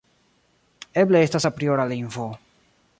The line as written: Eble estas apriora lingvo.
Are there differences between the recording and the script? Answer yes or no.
no